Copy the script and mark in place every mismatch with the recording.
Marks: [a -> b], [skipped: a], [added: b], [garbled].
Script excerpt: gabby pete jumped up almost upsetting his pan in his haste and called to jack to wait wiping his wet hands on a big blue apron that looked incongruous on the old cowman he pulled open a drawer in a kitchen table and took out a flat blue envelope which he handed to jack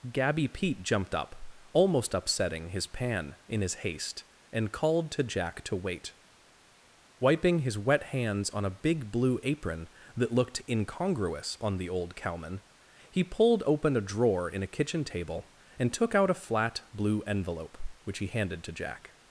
gabby pete jumped up almost upsetting his pan in his haste and called to jack to wait wiping his wet hands on a big blue apron that looked incongruous on the old cowman he pulled open a drawer in a kitchen table and took out a flat blue envelope which he handed to jack